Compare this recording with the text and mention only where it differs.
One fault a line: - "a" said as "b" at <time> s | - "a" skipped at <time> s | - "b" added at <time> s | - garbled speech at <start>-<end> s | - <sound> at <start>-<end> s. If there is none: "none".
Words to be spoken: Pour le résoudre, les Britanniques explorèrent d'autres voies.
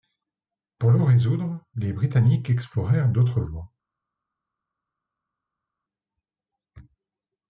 none